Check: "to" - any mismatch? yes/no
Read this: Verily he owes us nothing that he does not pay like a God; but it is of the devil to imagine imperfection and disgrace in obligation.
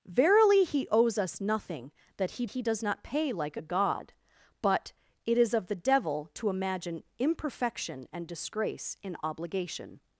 no